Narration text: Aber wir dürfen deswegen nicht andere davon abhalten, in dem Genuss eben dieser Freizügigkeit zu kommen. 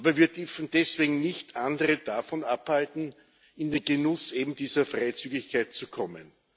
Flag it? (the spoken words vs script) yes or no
yes